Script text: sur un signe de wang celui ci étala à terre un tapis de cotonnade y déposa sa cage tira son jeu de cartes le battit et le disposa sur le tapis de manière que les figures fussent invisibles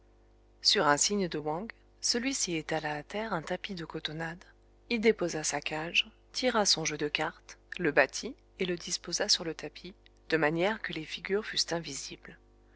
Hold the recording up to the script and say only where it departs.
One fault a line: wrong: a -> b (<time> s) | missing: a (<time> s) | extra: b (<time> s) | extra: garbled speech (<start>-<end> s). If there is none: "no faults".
no faults